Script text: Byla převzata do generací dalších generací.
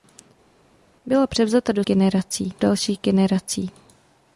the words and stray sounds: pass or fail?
pass